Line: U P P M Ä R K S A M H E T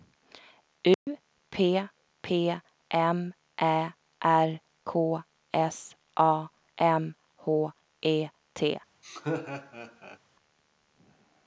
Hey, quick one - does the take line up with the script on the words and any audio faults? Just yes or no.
no